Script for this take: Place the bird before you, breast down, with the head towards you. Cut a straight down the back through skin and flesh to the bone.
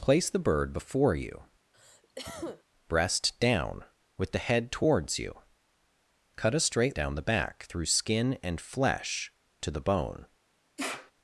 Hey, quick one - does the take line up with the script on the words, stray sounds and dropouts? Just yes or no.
no